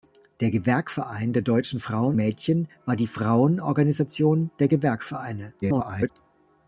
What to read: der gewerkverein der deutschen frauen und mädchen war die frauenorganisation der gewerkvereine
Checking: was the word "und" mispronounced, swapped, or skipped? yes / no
yes